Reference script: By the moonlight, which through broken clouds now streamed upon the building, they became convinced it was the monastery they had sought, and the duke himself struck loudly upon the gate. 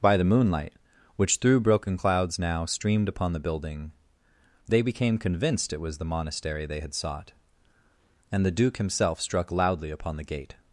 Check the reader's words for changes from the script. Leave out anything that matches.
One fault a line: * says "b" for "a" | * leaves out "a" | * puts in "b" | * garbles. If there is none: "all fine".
all fine